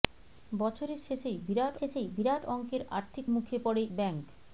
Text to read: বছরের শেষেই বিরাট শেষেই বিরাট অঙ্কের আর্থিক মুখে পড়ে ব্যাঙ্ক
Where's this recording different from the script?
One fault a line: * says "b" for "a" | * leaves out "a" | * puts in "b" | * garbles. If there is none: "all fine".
all fine